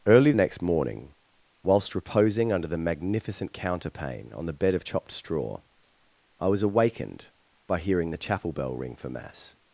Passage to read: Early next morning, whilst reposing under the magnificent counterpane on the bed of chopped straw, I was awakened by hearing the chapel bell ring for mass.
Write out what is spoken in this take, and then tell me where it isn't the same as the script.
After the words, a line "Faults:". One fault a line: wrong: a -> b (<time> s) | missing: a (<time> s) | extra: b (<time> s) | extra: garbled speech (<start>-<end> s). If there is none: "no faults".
Early next morning, whilst reposing under the magnificent counterpane on the bed of chopped straw, I was awakened by hearing the chapel bell ring for mass.
Faults:
no faults